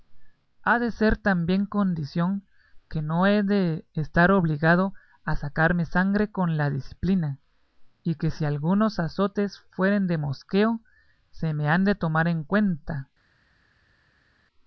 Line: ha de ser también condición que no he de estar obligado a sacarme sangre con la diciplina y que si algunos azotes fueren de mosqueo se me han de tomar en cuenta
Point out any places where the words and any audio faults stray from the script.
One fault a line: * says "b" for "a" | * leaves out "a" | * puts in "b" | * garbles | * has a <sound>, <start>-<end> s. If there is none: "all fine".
all fine